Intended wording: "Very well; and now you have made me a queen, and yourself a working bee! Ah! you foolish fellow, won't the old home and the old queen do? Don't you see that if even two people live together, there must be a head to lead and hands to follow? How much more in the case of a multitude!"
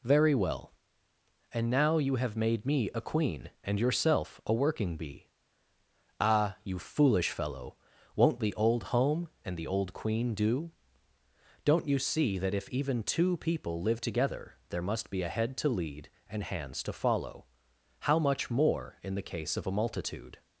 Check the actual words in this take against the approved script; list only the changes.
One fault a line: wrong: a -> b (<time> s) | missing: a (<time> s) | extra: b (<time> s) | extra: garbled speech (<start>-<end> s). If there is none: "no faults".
no faults